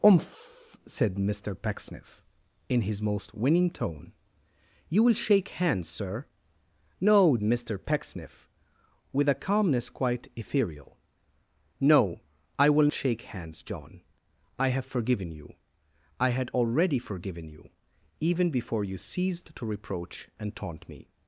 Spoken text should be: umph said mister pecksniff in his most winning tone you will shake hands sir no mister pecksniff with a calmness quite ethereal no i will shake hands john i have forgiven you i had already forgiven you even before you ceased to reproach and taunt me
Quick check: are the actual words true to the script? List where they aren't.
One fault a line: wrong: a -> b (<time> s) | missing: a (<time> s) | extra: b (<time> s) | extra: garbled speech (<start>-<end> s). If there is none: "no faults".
no faults